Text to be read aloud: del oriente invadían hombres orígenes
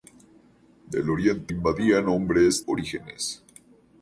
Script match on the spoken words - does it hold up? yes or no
yes